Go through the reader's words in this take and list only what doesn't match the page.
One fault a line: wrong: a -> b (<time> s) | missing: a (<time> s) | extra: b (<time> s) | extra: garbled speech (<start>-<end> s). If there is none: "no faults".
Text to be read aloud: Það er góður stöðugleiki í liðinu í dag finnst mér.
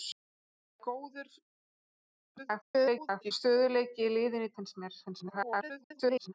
extra: garbled speech (2.4-3.3 s)
missing: dag (4.5 s)
extra: garbled speech (5.0-6.3 s)